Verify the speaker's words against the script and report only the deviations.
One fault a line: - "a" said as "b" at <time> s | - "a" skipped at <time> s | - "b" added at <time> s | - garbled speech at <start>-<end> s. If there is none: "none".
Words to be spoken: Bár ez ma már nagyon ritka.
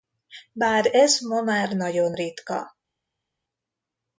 none